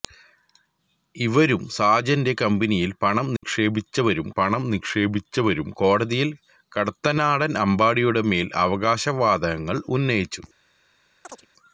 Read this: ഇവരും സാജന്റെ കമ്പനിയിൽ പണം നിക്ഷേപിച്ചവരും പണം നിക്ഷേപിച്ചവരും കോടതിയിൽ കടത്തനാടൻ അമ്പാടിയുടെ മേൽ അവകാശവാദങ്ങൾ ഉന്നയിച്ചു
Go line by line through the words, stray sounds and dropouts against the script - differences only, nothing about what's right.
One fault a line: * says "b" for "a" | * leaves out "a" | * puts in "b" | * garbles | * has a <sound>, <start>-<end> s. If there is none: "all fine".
* has a dropout, 3.4-3.4 s
* has a chirp, 11.2-11.5 s